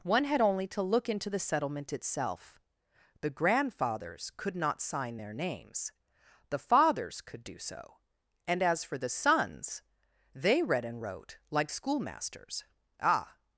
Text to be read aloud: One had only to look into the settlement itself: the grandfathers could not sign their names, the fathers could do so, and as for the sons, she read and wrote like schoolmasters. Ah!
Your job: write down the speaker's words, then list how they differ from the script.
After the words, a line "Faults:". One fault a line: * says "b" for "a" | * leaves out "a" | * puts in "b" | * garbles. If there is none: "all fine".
One had only to look into the settlement itself: the grandfathers could not sign their names, the fathers could do so, and as for the sons, they read and wrote like schoolmasters. Ah!
Faults:
* says "they" for "she"